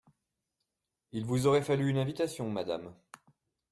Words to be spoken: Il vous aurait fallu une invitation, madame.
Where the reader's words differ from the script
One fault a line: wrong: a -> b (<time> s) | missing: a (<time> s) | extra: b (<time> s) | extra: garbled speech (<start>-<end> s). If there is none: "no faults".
no faults